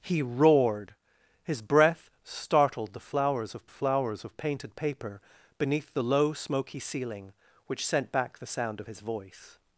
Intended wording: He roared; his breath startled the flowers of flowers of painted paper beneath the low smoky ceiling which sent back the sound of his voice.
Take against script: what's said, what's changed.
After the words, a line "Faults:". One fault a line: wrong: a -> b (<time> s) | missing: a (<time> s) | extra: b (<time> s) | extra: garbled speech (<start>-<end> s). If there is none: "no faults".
He roared; his breath startled the flowers of flowers of painted paper beneath the low smoky ceiling which sent back the sound of his voice.
Faults:
no faults